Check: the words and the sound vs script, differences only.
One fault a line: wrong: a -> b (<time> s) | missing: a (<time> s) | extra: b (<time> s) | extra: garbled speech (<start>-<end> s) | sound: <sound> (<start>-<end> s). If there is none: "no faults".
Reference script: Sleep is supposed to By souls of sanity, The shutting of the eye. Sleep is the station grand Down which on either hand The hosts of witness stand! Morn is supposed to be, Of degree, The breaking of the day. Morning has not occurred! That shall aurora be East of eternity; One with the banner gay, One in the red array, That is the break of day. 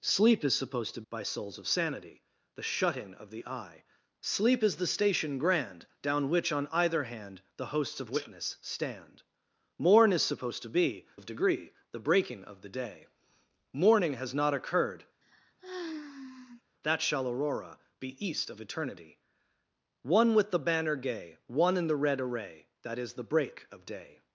sound: sigh (15.2-16.6 s)